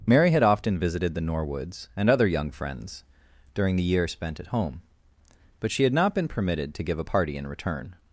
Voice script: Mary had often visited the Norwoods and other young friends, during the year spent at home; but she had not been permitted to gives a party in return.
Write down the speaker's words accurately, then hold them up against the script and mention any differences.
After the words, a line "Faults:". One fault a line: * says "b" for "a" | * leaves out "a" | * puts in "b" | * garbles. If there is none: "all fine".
Mary had often visited the Norwoods and other young friends, during the year spent at home; but she had not been permitted to give a party in return.
Faults:
* says "give" for "gives"